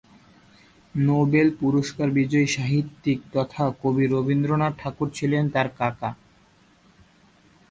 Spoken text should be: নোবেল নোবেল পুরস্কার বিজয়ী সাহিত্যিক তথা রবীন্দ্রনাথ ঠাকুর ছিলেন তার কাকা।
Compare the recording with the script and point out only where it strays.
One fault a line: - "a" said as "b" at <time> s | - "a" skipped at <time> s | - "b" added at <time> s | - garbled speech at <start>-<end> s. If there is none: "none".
- "নোবেল" skipped at 1.5 s
- "কবি" added at 3.8 s